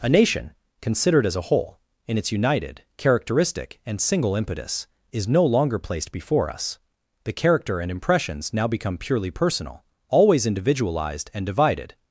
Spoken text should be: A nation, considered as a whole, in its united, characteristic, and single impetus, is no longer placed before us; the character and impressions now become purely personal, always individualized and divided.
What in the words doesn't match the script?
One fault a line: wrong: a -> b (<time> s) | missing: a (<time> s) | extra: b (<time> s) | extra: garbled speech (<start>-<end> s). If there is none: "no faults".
no faults